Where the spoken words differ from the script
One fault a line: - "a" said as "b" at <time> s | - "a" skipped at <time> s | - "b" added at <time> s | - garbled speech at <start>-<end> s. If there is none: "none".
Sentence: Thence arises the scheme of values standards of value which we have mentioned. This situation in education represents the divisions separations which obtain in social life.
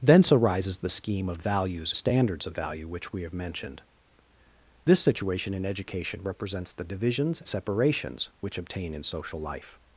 none